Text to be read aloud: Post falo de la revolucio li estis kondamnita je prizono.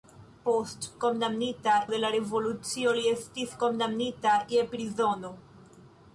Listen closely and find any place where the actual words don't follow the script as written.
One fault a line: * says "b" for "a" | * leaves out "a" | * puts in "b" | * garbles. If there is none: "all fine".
* says "kondamnita" for "falo"